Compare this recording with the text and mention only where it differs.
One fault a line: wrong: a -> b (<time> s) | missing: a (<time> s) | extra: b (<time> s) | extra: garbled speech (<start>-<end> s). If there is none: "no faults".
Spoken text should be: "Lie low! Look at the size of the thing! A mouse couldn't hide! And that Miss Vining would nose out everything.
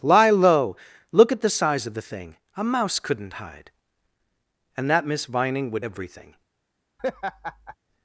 missing: nose out (5.8 s)